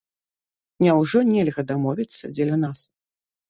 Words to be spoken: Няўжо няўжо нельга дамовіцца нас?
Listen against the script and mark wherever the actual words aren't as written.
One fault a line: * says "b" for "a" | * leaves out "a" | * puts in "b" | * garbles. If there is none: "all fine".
* leaves out "няўжо"
* puts in "дзеля"